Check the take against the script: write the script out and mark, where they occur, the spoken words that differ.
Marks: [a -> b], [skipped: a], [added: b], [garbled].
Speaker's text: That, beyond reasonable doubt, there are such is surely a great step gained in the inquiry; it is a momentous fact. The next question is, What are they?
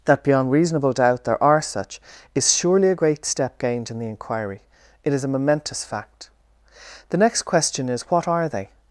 That, beyond reasonable doubt, there are such is surely a great step gained in the inquiry; it is a momentous fact. The next question is, What are they?